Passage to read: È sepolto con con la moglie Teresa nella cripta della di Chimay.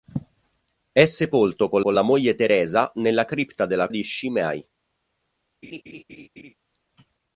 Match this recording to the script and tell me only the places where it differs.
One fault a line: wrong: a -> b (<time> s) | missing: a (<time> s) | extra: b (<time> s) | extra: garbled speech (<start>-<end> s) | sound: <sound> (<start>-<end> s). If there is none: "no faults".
sound: laugh (5.6-6.5 s)